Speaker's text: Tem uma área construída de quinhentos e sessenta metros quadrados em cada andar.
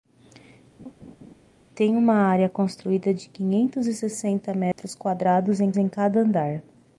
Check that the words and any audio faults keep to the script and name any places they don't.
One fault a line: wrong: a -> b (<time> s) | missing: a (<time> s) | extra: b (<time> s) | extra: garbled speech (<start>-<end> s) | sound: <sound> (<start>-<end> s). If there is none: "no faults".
sound: laugh (0.8-1.4 s)
sound: dropout (4.7-4.8 s)
extra: em (5.8 s)